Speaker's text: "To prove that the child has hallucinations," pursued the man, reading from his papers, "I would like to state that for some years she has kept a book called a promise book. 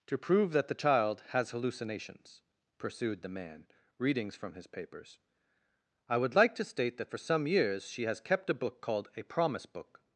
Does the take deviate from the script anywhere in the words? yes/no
yes